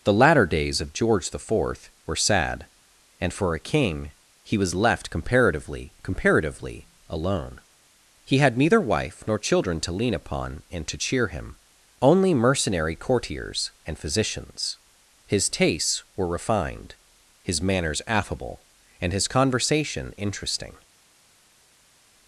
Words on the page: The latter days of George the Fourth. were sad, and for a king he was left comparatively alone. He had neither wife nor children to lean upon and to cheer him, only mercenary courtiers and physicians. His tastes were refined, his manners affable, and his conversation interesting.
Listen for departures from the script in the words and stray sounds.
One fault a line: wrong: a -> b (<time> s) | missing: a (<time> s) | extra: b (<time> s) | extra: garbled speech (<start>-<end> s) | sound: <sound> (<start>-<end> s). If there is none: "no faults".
extra: comparatively (6.0 s)